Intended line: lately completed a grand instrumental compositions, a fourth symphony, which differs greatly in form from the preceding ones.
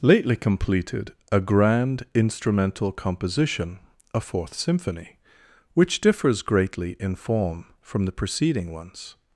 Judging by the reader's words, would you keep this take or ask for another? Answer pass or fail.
fail